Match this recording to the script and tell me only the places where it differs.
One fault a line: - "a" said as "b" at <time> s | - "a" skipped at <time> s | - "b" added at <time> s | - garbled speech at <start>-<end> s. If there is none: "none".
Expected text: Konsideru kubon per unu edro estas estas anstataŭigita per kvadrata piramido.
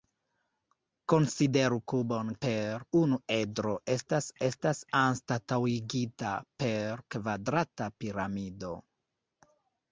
none